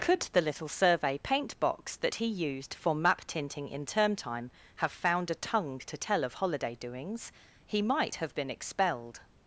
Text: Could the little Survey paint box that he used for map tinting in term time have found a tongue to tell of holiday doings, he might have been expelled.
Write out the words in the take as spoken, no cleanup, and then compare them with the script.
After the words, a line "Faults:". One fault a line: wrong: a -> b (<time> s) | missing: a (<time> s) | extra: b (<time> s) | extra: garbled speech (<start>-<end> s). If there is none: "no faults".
Could the little Survey paint box that he used for map tinting in term time have found a tongue to tell of holiday doings, he might have been expelled.
Faults:
no faults